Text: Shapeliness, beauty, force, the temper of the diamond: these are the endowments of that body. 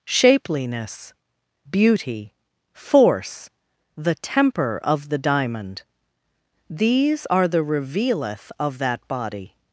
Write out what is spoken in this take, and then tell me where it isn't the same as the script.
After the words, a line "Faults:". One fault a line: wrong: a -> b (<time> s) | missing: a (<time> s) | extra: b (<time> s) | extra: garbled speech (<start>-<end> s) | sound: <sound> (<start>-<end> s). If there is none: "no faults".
Shapeliness, beauty, force, the temper of the diamond: these are the revealeth of that body.
Faults:
wrong: endowments -> revealeth (7.6 s)